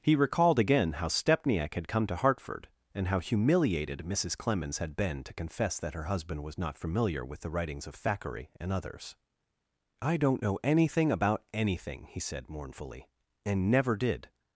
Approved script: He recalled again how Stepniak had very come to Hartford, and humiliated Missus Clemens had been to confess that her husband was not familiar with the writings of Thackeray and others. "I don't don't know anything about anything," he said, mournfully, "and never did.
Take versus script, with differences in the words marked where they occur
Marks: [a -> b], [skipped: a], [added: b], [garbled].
He recalled again how Stepniak had [skipped: very] come to Hartford, and [added: how] humiliated Missus Clemens had been to confess that her husband was not familiar with the writings of Thackeray and others. "I don't [skipped: don't] know anything about anything," he said, mournfully, "and never did.